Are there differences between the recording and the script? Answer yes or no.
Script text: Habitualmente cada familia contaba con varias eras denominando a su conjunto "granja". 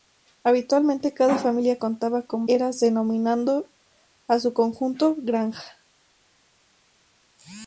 yes